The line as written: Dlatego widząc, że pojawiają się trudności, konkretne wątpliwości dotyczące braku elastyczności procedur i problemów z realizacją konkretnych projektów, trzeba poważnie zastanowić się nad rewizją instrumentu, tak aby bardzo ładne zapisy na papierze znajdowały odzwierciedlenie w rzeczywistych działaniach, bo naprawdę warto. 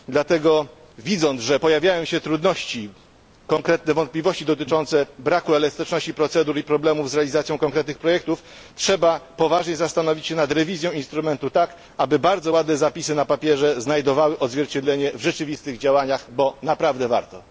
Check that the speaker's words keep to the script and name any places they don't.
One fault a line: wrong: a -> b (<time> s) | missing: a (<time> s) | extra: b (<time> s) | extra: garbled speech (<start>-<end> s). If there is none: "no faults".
no faults